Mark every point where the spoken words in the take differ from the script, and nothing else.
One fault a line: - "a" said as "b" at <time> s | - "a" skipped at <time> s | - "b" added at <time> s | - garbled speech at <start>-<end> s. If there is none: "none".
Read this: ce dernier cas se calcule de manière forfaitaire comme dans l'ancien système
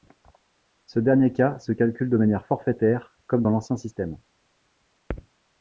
none